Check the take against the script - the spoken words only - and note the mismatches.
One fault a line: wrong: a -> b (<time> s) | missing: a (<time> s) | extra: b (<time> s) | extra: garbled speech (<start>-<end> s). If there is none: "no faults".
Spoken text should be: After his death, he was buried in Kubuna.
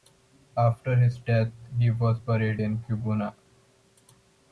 no faults